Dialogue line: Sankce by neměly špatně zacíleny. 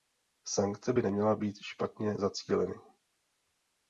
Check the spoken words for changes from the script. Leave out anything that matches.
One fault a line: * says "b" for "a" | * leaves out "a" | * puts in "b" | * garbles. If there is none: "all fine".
* puts in "být"